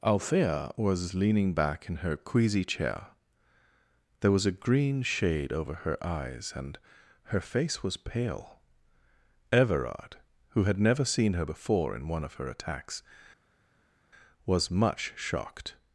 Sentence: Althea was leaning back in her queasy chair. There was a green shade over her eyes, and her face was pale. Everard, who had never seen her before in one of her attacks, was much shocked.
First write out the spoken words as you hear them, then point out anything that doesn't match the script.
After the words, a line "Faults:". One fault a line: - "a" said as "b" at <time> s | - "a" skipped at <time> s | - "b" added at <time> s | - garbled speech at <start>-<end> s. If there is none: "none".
Althea was leaning back in her queasy chair. There was a green shade over her eyes, and her face was pale. Everard, who had never seen her before in one of her attacks, was much shocked.
Faults:
none